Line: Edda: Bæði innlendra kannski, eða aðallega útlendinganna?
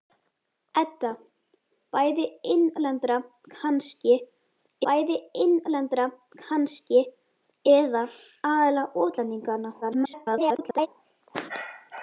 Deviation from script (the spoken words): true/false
true